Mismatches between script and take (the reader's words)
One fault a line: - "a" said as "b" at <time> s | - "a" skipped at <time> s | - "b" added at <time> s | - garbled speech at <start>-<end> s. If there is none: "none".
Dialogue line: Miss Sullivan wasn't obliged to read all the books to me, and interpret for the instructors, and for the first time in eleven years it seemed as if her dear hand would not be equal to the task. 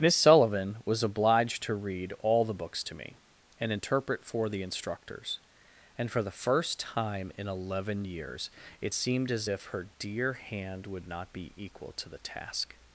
- "wasn't" said as "was" at 0.8 s